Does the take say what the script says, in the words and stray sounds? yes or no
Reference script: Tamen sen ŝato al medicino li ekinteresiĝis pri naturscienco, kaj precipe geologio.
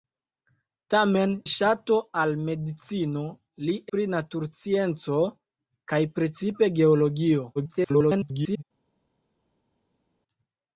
no